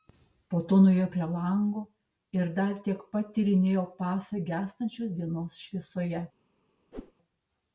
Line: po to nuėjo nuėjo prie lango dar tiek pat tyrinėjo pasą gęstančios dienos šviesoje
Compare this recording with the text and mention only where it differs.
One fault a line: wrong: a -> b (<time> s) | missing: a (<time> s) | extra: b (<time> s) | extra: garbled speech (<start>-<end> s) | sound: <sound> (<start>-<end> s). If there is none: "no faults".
missing: nuėjo (1.0 s)
extra: ir (2.4 s)
sound: whoosh (6.9-7.1 s)